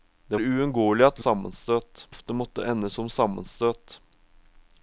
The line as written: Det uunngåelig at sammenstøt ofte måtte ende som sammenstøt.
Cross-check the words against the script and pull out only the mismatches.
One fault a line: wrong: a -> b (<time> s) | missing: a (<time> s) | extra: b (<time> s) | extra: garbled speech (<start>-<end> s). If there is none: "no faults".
no faults